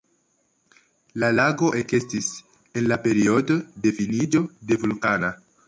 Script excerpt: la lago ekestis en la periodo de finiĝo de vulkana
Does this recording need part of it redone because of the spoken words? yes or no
no